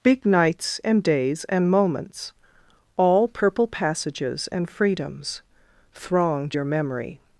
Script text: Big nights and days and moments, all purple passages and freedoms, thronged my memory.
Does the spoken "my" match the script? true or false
false